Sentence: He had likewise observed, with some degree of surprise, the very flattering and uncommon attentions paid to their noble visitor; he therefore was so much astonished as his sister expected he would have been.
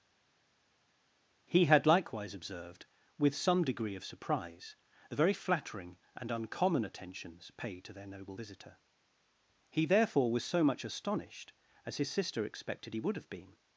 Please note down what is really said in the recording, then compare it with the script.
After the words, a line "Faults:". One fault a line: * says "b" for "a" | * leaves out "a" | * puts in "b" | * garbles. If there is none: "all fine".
He had likewise observed, with some degree of surprise, the very flattering and uncommon attentions paid to their noble visitor; he therefore was so much astonished as his sister expected he would have been.
Faults:
all fine